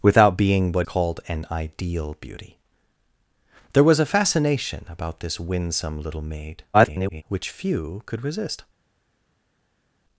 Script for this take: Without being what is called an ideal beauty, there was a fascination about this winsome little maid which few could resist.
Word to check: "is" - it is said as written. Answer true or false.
false